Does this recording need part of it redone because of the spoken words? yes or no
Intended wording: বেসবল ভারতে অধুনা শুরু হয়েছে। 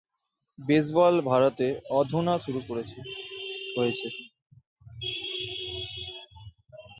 no